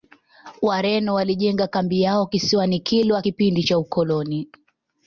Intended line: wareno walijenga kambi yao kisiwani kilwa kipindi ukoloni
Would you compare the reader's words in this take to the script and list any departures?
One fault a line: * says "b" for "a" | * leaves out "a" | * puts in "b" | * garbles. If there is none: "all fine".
* puts in "cha"